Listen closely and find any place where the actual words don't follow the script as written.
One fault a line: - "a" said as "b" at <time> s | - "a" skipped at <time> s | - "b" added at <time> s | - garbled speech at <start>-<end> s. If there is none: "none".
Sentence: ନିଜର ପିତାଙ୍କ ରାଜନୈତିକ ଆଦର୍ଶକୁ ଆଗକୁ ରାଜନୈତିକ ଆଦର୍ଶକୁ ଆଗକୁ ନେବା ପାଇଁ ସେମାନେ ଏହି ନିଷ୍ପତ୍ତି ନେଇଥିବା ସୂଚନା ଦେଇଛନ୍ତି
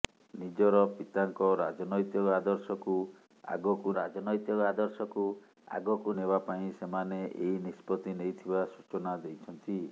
none